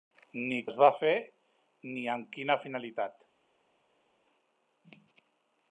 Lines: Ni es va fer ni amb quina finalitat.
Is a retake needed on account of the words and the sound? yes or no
no